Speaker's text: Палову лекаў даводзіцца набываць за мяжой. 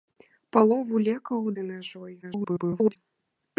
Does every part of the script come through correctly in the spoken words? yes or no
no